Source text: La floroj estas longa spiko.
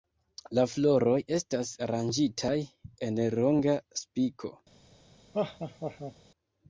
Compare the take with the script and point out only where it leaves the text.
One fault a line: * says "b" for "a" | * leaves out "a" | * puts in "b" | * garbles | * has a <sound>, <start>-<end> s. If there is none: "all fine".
* puts in "aranĝitaj en"
* has a laugh, 5.3-6.1 s